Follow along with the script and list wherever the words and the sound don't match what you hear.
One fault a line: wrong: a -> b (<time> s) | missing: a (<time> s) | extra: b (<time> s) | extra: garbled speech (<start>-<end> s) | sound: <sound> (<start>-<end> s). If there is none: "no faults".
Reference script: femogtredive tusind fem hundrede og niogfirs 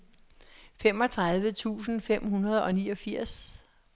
no faults